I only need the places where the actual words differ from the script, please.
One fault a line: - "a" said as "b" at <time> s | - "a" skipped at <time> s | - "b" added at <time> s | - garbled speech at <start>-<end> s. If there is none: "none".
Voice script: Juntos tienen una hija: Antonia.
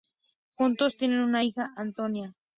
none